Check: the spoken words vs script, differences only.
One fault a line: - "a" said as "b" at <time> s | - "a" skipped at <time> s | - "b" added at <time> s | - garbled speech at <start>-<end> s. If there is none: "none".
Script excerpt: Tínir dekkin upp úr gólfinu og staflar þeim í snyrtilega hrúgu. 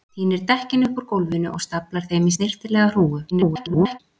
- garbled speech at 3.3-4.0 s